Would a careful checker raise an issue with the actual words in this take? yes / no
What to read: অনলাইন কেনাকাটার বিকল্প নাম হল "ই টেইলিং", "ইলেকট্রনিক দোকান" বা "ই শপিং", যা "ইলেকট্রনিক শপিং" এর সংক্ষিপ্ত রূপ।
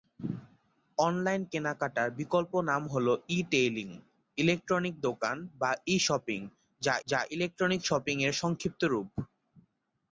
yes